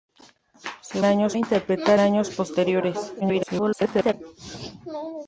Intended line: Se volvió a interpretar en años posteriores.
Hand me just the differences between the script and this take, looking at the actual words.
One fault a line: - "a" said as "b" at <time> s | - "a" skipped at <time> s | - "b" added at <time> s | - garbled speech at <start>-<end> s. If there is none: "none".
- "volvió" said as "años" at 1.0 s
- "en" skipped at 2.0 s
- garbled speech at 3.2-4.1 s